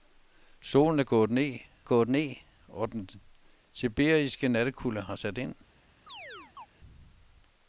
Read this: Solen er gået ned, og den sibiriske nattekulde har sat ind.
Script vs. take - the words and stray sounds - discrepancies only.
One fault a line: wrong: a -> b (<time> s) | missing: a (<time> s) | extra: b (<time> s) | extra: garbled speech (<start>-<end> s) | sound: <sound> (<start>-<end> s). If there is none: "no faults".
extra: gået ned (1.8 s)
sound: chirp (6.1-6.7 s)